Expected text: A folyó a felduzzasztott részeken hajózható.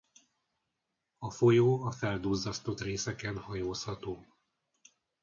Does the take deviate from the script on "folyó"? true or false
false